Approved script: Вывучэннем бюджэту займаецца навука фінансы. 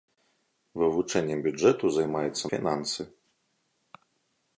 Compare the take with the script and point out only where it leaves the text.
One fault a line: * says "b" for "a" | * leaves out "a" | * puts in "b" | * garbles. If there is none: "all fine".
* leaves out "навука"